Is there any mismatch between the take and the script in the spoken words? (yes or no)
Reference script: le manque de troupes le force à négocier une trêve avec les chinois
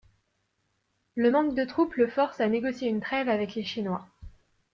no